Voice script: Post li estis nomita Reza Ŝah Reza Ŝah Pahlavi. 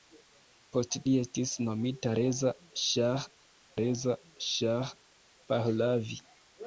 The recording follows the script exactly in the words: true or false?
true